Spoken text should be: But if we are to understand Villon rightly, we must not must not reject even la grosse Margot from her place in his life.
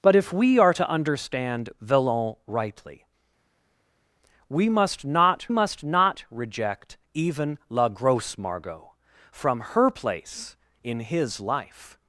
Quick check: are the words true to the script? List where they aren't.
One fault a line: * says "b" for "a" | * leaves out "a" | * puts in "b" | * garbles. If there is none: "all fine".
all fine